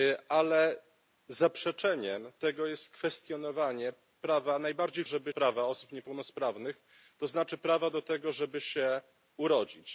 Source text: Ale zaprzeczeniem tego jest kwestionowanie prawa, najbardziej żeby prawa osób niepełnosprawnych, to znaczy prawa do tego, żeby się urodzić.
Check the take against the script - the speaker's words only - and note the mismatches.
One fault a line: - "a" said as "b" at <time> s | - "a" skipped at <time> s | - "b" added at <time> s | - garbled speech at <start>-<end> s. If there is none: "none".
none